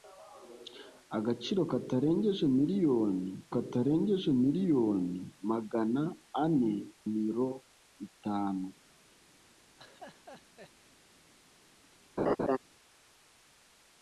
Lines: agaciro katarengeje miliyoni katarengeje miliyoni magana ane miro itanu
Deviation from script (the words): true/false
false